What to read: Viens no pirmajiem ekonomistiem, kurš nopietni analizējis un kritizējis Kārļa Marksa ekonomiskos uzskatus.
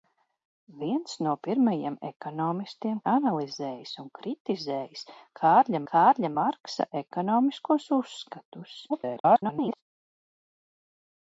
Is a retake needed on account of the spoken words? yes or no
yes